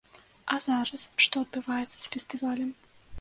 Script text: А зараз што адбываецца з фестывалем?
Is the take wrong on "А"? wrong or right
right